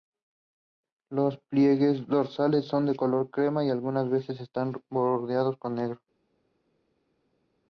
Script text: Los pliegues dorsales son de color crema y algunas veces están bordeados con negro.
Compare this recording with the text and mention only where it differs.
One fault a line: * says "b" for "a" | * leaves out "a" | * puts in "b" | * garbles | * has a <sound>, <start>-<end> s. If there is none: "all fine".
all fine